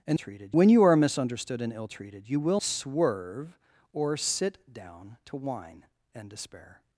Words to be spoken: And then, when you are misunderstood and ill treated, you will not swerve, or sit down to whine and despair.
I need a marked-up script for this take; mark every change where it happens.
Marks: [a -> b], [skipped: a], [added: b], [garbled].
And [then, -> treated] when you are misunderstood and ill treated, you will [skipped: not] swerve, or sit down to whine and despair.